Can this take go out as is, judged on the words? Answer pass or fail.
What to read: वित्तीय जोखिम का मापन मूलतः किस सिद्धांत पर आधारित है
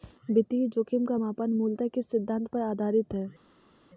pass